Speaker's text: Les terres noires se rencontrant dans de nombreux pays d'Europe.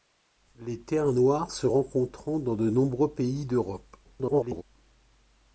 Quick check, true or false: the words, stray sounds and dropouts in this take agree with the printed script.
false